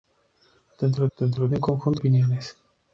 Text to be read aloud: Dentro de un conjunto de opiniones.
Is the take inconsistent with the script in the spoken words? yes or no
yes